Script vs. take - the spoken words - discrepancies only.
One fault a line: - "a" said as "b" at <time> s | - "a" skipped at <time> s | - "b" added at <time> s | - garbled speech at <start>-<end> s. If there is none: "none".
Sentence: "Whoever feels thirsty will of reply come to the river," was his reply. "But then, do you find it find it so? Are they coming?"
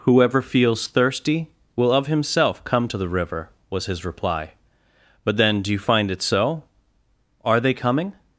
- "reply" said as "himself" at 2.1 s
- "find it" skipped at 6.2 s